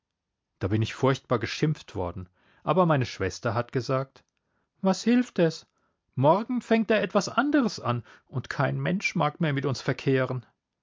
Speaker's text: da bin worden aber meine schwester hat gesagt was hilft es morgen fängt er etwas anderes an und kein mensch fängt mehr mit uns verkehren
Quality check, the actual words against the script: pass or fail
fail